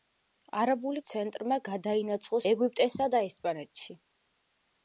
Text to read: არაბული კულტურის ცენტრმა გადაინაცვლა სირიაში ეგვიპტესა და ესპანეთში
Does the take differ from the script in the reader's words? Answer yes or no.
yes